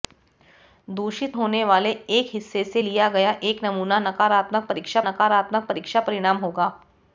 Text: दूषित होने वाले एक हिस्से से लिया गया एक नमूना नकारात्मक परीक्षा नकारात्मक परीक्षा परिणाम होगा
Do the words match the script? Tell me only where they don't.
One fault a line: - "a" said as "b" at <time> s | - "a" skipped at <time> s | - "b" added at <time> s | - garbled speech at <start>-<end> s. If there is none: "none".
none